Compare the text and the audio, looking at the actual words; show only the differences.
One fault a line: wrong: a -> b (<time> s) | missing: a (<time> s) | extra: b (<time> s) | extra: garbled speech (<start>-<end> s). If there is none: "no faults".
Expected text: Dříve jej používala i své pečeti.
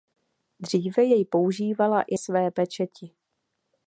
no faults